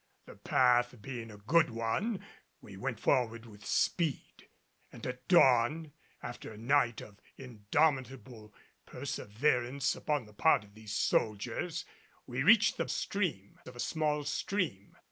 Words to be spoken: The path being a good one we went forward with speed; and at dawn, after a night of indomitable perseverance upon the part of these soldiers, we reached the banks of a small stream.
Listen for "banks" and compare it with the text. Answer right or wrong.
wrong